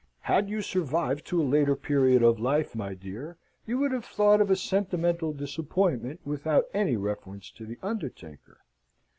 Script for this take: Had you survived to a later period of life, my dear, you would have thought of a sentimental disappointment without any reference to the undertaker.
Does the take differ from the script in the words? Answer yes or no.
no